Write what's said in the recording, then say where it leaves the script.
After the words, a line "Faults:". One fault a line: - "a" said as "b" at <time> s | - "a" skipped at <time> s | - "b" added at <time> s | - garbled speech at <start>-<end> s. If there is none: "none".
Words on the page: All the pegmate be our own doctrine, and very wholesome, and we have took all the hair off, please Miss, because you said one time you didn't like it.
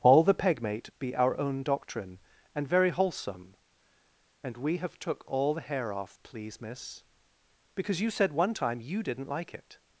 All the pegmate be our own doctrine, and very wholesome, and we have took all the hair off, please Miss, because you said one time you didn't like it.
Faults:
none